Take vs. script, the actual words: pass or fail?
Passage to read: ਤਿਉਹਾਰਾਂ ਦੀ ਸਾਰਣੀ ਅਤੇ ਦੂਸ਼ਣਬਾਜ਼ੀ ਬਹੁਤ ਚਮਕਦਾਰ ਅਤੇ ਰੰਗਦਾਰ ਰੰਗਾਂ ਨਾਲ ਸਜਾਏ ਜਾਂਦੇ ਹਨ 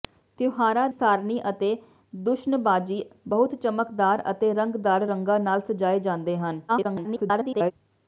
fail